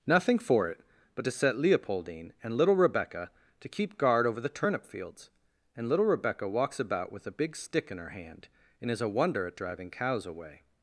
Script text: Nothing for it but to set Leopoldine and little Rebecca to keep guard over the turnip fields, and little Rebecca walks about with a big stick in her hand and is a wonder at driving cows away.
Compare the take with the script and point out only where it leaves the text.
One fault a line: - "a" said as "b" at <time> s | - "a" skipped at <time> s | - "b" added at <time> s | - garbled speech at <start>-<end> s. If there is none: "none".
none